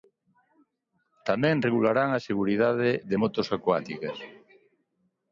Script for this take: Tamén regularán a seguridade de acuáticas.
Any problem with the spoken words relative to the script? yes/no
yes